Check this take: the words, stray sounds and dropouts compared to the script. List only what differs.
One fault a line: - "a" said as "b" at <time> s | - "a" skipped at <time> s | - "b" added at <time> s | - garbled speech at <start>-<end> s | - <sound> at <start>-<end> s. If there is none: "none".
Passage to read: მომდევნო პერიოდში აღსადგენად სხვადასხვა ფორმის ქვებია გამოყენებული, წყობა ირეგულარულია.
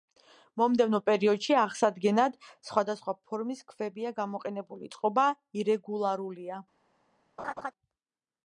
- laugh at 7.4-7.7 s